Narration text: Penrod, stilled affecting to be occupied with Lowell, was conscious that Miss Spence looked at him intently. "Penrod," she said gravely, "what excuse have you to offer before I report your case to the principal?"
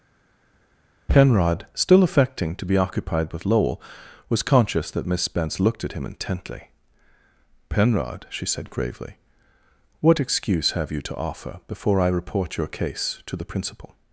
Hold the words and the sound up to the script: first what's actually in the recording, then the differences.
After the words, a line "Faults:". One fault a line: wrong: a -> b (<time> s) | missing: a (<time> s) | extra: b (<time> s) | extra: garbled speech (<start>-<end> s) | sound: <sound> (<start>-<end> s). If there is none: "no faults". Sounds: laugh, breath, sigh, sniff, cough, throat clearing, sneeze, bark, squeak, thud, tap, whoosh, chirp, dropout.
Penrod, still affecting to be occupied with Lowell, was conscious that Miss Spence looked at him intently. "Penrod," she said gravely, "what excuse have you to offer before I report your case to the principal?"
Faults:
wrong: stilled -> still (1.7 s)